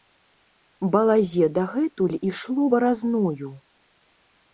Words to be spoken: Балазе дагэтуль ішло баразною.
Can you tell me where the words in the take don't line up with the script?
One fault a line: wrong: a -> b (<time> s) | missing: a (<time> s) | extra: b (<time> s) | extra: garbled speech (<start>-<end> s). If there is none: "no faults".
no faults